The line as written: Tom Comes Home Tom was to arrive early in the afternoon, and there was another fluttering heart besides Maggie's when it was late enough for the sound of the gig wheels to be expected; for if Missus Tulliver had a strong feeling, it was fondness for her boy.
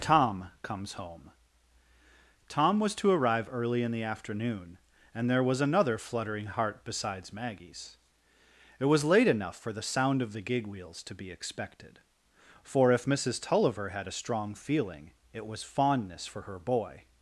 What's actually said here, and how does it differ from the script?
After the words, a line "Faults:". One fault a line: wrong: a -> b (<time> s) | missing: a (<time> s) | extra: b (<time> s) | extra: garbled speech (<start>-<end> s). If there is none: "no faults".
Tom Comes Home Tom was to arrive early in the afternoon, and there was another fluttering heart besides Maggie's it was late enough for the sound of the gig wheels to be expected; for if Missus Tulliver had a strong feeling, it was fondness for her boy.
Faults:
missing: when (8.0 s)